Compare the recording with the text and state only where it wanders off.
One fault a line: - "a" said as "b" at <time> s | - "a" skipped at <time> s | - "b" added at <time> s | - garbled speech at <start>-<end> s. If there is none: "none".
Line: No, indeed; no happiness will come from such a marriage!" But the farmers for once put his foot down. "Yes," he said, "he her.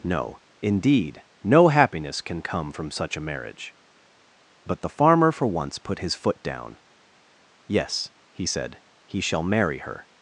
- "will" said as "can" at 2.2 s
- "farmers" said as "farmer" at 4.9 s
- "shall marry" added at 9.2 s